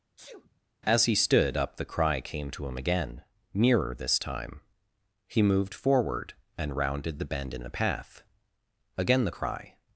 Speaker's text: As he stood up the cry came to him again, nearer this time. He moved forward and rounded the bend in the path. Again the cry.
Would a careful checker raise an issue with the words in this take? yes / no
no